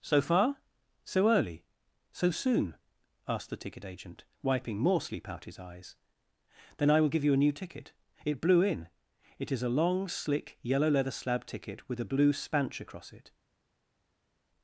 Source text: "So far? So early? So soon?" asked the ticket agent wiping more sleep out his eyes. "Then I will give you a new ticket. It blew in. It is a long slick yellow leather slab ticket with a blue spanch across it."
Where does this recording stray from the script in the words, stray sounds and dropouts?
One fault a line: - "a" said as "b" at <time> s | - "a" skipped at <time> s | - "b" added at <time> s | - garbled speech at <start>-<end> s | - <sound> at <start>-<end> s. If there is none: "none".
none